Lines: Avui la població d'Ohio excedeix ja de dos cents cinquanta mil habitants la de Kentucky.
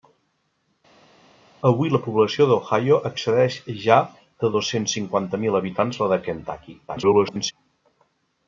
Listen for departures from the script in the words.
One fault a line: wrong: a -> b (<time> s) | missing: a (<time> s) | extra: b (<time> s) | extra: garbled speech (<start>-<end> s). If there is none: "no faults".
extra: garbled speech (6.9-7.5 s)